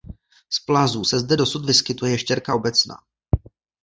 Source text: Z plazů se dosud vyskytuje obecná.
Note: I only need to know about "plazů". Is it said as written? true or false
true